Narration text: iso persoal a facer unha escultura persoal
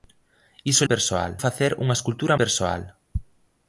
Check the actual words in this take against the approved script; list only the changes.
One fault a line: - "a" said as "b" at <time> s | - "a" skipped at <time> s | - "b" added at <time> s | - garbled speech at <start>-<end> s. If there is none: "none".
none